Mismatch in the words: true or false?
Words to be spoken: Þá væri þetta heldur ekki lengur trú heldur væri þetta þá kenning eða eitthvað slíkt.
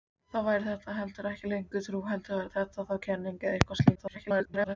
true